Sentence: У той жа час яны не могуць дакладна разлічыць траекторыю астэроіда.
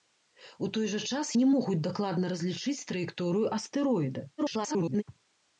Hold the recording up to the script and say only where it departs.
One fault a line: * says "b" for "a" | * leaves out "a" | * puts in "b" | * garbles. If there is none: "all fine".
* leaves out "яны"
* garbles